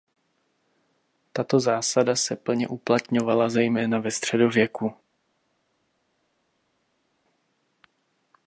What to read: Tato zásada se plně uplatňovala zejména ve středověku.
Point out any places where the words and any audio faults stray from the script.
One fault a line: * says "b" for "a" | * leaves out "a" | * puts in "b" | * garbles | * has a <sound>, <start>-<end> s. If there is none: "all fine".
all fine